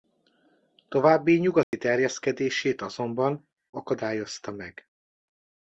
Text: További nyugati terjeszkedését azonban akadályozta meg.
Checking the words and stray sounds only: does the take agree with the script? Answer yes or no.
no